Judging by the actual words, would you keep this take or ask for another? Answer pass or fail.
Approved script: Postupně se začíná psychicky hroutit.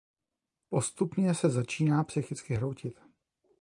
pass